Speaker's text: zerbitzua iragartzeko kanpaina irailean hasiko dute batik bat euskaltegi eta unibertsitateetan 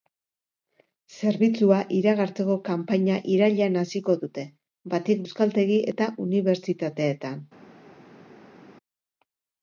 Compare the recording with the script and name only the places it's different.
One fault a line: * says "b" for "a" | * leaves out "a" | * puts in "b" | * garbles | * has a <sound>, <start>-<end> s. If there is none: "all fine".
* leaves out "bat"